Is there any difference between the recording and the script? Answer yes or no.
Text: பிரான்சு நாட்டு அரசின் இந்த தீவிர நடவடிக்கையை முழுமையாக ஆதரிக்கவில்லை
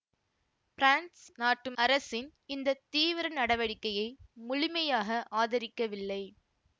no